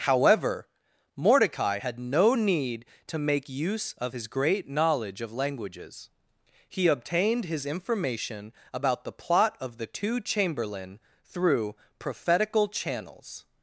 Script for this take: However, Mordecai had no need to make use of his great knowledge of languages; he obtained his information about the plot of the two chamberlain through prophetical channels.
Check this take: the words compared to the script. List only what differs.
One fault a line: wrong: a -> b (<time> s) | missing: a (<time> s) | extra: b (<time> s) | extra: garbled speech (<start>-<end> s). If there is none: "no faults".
no faults